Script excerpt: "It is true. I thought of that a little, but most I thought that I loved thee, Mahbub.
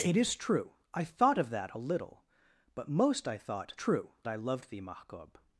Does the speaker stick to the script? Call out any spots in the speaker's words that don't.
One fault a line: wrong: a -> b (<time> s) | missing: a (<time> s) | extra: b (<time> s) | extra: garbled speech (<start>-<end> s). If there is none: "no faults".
wrong: that -> true (3.7 s)